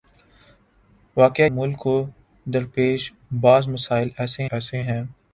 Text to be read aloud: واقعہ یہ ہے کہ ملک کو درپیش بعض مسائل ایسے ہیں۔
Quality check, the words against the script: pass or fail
fail